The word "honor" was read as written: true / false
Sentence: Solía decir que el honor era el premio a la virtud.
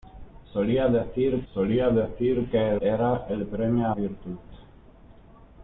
false